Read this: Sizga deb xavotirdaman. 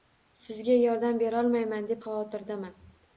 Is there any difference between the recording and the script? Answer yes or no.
yes